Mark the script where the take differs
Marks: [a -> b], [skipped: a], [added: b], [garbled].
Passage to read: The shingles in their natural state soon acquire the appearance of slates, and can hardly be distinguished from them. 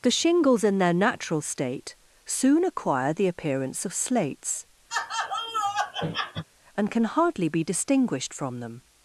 The shingles in their natural state soon acquire the appearance of slates, and can hardly be distinguished from them.